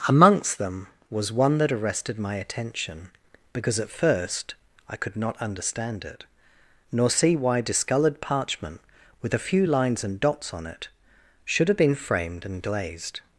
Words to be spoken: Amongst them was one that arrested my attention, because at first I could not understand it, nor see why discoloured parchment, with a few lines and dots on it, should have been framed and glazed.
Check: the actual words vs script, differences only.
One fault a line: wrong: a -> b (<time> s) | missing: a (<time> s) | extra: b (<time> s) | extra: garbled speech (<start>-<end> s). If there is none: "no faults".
no faults